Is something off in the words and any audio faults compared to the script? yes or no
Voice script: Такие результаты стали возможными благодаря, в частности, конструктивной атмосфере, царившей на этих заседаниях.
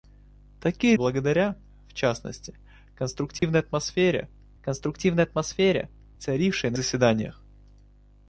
yes